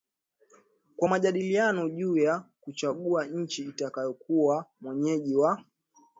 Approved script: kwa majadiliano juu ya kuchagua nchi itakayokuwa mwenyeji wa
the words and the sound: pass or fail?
pass